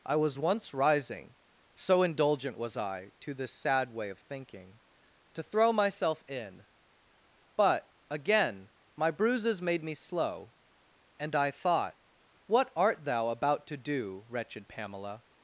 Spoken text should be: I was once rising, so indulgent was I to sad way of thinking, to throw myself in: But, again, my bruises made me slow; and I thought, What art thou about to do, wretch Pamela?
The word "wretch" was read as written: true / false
false